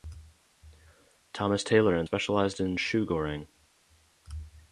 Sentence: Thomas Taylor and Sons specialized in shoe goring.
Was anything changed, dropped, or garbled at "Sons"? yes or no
yes